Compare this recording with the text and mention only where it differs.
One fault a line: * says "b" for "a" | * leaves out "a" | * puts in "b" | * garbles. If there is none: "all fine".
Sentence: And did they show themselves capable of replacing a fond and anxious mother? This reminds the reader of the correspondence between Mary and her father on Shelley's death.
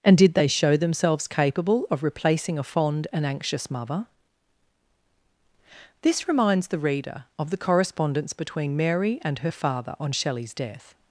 all fine